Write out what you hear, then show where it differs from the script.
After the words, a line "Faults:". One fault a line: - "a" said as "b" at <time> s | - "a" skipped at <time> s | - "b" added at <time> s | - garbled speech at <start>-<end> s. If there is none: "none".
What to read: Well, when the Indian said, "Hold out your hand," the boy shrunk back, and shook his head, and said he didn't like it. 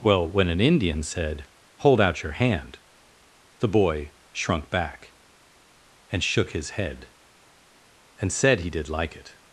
Well, when an Indian said, "Hold out your hand," the boy shrunk back, and shook his head, and said he did like it.
Faults:
- "the" said as "an" at 0.5 s
- "didn't" said as "did" at 8.7 s